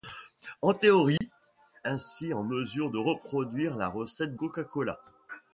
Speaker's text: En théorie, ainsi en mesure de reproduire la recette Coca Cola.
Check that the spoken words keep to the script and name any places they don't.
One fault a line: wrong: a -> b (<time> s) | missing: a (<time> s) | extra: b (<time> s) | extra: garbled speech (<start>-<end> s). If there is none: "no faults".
no faults